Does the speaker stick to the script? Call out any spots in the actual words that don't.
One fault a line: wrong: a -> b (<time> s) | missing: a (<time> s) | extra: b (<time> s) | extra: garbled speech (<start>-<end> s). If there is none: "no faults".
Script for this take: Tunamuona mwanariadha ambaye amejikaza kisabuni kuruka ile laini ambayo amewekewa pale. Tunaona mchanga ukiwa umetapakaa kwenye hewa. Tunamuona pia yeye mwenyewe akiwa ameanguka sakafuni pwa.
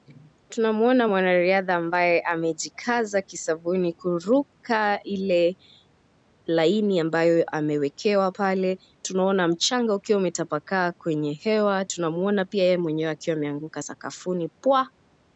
no faults